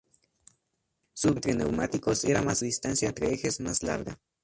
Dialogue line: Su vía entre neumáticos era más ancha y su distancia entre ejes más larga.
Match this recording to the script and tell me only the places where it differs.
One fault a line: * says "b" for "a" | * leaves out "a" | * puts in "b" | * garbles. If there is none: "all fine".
* leaves out "vía"
* leaves out "ancha y su"